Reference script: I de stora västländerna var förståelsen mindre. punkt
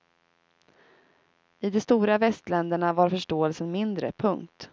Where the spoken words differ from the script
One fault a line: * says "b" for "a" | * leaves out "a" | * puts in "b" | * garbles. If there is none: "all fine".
all fine